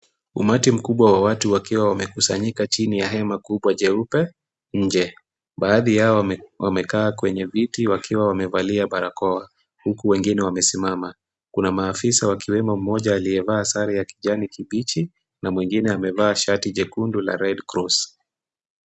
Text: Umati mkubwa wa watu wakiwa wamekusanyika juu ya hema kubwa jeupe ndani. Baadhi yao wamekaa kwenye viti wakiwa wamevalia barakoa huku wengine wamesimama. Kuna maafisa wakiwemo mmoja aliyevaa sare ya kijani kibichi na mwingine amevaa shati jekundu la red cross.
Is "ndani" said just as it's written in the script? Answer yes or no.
no